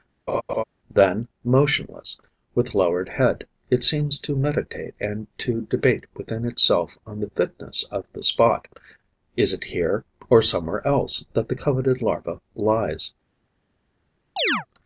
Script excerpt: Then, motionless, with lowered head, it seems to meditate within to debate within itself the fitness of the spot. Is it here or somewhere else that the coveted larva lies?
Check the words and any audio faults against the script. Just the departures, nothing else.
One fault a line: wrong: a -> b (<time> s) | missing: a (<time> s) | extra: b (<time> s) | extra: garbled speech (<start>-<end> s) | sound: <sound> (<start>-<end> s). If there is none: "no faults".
sound: laugh (0.3-0.6 s)
wrong: within -> and (5.0 s)
extra: on (7.1 s)
sound: chirp (14.4-14.7 s)